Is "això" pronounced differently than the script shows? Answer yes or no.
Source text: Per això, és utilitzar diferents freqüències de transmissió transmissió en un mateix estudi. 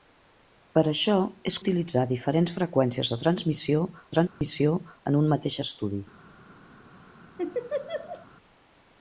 no